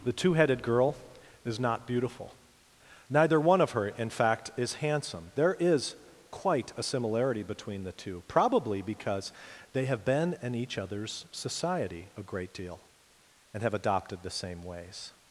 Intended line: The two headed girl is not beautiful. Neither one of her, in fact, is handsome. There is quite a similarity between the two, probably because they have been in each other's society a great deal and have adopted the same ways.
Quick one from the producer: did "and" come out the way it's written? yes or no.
yes